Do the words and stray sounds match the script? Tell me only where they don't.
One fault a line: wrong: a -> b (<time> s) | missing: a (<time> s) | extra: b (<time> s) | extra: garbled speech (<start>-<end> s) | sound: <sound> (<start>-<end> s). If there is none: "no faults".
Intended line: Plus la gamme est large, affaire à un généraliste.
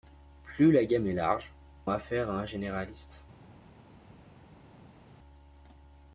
no faults